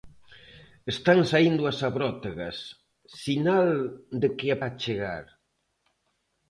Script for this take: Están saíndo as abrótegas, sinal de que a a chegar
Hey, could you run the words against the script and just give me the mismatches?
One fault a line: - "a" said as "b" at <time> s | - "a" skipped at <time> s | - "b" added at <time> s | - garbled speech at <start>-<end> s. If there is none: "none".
none